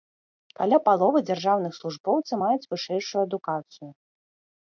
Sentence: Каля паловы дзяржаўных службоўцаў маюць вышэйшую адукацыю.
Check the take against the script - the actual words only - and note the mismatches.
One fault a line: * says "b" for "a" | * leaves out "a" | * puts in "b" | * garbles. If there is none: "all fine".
all fine